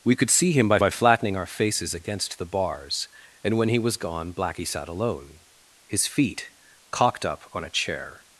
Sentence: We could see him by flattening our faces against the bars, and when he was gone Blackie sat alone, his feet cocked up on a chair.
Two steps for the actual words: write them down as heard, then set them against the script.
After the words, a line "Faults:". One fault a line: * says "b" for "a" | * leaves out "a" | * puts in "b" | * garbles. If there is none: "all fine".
We could see him by by flattening our faces against the bars, and when he was gone Blackie sat alone, his feet cocked up on a chair.
Faults:
* puts in "by"